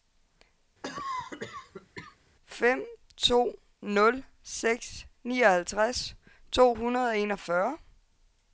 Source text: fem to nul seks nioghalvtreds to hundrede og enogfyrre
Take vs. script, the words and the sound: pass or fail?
fail